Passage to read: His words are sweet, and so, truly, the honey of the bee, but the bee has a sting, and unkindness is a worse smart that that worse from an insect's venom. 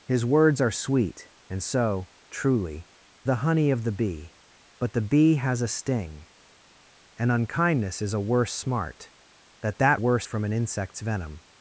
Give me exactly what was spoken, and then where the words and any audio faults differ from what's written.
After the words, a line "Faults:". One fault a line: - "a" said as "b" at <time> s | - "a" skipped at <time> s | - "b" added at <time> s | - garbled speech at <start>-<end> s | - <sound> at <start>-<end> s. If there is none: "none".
His words are sweet, and so, truly, the honey of the bee, but the bee has a sting, and unkindness is a worse smart that that worse from an insect's venom.
Faults:
none